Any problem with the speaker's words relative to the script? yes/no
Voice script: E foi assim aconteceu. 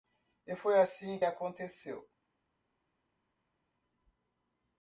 no